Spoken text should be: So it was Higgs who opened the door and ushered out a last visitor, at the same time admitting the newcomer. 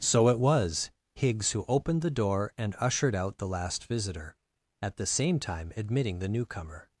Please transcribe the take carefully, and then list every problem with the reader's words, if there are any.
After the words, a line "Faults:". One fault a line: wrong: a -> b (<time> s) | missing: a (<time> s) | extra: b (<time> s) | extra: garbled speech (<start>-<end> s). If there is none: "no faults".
So it was Higgs who opened the door and ushered out the last visitor, at the same time admitting the newcomer.
Faults:
wrong: a -> the (3.4 s)